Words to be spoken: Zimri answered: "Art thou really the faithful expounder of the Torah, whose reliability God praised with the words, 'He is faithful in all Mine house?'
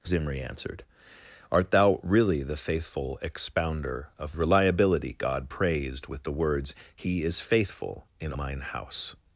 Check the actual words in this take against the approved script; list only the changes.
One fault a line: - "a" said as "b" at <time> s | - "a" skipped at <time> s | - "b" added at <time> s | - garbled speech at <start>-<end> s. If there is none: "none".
- "the Torah whose" skipped at 4.3 s
- "all" skipped at 8.3 s